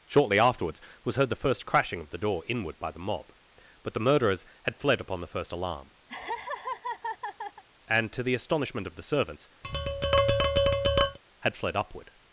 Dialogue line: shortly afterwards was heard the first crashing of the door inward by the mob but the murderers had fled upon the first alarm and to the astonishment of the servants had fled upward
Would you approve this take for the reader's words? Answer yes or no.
yes